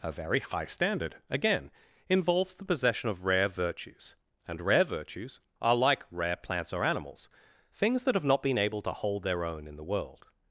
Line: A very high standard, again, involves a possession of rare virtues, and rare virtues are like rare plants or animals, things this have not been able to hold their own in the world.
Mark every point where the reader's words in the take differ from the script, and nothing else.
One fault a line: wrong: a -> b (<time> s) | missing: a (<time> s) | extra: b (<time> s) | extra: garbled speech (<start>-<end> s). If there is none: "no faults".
wrong: a -> the (2.5 s)
wrong: this -> that (8.0 s)